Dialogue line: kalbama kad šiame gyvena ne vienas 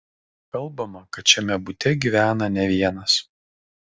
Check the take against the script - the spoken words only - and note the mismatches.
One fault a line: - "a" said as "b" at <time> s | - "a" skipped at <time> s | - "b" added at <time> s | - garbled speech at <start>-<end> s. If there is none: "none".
- "bute" added at 1.7 s